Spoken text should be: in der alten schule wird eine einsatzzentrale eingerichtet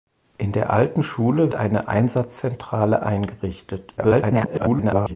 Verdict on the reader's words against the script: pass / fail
fail